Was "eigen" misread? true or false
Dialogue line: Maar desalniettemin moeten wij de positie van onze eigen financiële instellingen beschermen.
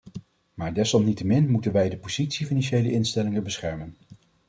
true